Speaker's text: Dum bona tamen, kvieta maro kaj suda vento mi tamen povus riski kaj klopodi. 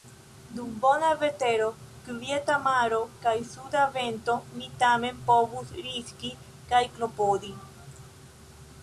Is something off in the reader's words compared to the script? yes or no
yes